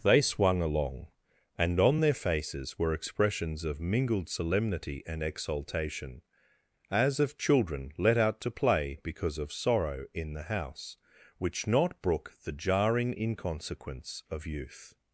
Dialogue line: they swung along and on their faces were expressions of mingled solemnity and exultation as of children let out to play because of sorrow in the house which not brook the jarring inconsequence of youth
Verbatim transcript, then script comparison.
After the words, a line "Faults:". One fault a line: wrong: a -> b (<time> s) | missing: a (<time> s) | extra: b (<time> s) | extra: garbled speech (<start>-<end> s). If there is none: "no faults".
they swung along and on their faces were expressions of mingled solemnity and exultation as of children let out to play because of sorrow in the house which not brook the jarring inconsequence of youth
Faults:
no faults